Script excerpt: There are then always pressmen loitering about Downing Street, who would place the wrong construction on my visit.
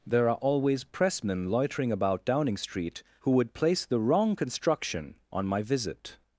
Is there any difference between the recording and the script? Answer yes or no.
yes